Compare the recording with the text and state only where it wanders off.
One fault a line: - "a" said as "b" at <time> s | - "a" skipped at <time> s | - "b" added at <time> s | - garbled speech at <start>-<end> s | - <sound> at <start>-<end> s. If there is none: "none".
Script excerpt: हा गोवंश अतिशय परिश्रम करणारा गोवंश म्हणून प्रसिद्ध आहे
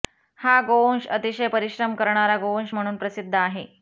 none